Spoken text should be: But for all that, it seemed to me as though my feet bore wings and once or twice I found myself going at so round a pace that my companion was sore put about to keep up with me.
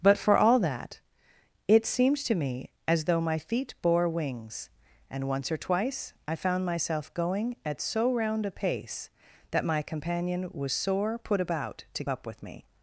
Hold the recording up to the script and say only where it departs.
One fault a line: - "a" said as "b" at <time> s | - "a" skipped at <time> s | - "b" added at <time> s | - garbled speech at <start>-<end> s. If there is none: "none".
- "keep" skipped at 12.0 s